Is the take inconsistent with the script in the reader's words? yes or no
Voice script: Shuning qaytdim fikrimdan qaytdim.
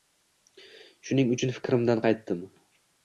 yes